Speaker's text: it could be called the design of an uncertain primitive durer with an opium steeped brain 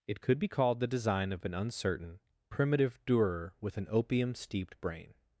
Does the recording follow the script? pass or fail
pass